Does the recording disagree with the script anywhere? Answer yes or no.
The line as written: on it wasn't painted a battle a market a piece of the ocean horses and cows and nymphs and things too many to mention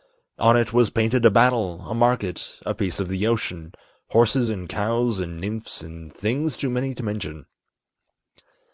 yes